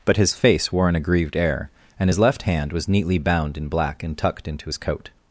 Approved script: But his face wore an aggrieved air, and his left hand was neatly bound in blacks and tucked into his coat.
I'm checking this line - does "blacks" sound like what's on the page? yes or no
no